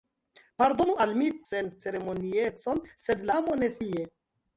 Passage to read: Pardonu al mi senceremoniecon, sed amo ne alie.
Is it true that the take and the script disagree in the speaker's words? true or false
false